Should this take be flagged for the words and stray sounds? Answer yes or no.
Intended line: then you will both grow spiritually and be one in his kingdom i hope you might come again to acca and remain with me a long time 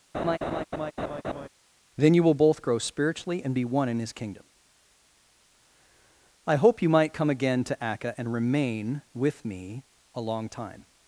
yes